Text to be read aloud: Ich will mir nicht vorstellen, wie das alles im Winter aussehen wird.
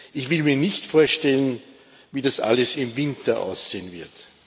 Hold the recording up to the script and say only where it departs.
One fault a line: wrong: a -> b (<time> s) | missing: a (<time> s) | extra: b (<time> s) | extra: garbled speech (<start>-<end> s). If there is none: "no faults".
no faults